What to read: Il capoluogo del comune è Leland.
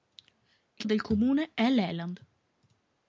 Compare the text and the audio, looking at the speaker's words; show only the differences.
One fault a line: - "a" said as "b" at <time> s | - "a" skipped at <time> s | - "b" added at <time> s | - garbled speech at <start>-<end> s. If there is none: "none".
- "capoluogo" skipped at 0.8 s